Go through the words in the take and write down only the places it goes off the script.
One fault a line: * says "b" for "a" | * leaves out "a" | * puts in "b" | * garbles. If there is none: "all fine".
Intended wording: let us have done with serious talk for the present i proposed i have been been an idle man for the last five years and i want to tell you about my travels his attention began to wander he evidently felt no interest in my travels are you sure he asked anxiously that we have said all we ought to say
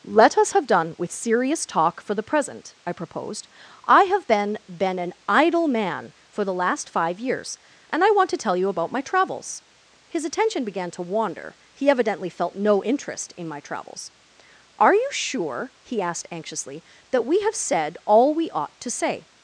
all fine